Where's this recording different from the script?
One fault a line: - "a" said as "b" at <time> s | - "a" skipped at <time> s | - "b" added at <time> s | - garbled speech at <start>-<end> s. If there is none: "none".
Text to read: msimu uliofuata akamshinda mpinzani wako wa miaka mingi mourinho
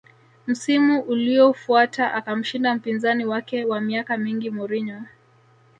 - "wako" said as "wake" at 3.2 s